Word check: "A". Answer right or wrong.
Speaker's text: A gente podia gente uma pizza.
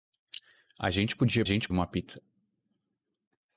right